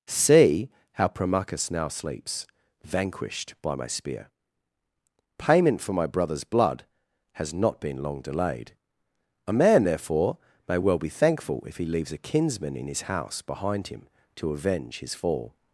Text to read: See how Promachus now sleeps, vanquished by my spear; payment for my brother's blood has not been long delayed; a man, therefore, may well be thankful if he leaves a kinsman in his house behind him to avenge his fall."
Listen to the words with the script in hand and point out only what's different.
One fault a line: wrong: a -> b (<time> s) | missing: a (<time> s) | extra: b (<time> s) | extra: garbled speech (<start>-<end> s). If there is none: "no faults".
no faults